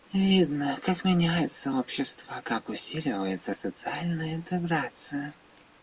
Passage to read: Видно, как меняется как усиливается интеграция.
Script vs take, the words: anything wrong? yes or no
yes